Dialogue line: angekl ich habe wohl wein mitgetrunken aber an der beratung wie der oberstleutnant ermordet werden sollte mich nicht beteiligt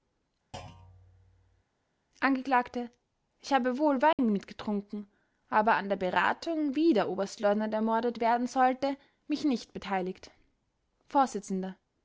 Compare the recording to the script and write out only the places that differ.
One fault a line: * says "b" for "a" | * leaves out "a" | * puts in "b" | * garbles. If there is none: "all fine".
all fine